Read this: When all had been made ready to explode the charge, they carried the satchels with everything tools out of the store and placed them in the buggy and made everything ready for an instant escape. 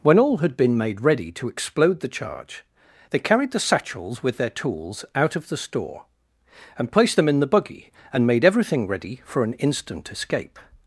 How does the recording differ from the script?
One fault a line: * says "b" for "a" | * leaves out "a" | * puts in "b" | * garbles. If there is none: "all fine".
* says "their" for "everything"